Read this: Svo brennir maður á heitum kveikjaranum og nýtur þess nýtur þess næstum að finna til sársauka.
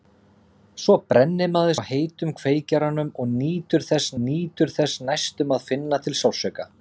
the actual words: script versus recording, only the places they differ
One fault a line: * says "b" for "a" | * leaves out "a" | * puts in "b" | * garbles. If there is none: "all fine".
all fine